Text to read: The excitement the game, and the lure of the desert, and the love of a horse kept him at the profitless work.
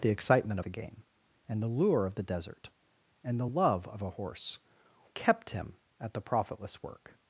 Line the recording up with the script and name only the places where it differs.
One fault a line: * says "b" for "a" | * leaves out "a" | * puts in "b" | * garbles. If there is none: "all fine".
all fine